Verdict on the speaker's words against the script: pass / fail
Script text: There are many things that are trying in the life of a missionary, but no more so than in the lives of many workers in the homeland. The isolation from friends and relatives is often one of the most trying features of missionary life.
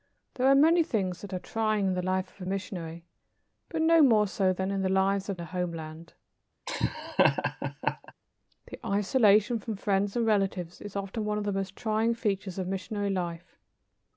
fail